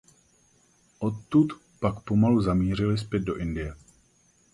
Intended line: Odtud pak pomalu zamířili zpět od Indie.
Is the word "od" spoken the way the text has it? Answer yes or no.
no